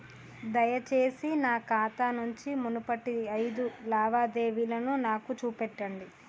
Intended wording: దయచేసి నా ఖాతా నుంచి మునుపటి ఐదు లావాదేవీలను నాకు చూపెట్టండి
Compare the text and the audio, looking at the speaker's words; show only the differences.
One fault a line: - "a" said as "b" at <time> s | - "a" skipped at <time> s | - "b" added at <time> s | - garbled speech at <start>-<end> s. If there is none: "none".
none